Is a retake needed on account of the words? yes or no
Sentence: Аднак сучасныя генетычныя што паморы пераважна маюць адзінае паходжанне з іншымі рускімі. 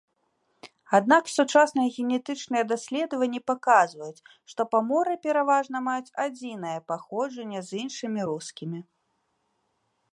yes